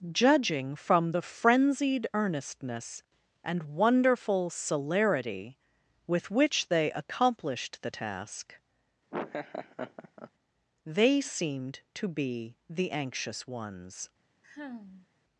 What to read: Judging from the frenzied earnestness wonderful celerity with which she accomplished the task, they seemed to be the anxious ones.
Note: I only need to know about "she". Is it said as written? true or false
false